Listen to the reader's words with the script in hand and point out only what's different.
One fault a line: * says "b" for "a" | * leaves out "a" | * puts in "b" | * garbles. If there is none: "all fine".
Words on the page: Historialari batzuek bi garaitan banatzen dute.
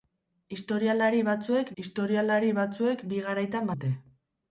* puts in "historialari batzuek"
* leaves out "banatzen"